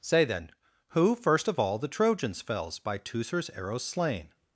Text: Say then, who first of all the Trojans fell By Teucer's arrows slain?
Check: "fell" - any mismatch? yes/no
yes